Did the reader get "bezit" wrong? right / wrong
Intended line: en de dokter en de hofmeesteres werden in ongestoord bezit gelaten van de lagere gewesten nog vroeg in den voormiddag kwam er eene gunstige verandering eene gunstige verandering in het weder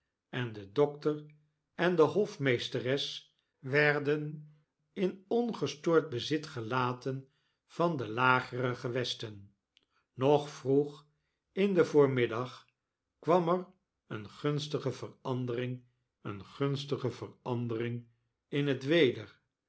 right